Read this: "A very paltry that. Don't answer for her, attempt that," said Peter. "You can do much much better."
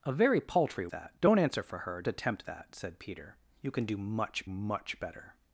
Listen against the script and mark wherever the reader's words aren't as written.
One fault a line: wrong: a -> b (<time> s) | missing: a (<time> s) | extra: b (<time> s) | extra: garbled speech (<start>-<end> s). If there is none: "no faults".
no faults